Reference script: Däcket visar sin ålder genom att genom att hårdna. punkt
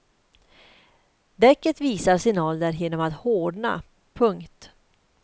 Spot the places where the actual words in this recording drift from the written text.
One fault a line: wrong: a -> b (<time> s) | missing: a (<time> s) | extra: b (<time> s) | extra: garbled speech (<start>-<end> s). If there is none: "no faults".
missing: genom att (3.1 s)